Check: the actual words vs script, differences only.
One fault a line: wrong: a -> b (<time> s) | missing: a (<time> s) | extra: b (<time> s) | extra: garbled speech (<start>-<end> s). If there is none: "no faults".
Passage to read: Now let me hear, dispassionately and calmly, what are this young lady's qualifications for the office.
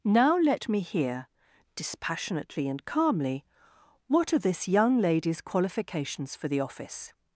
no faults